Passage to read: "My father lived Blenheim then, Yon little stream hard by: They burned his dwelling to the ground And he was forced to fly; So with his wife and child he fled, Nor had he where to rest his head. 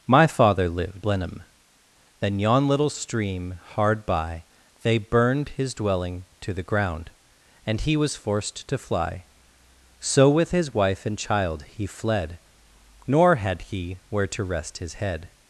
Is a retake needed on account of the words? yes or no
no